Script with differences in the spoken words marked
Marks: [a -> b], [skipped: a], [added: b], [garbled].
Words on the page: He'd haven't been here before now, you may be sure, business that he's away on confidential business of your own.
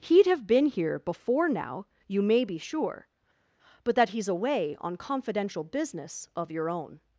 He'd [haven't -> have] been here before now, you may be sure, [business -> but] that he's away on confidential business of your own.